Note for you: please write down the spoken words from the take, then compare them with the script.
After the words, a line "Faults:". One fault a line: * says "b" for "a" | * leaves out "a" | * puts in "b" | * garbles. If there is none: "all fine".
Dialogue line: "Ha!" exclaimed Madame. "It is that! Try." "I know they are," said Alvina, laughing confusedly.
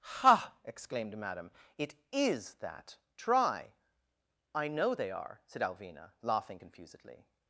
"Ha!" exclaimed Madame. "It is that! Try." "I know they are," said Alvina, laughing confusedly.
Faults:
all fine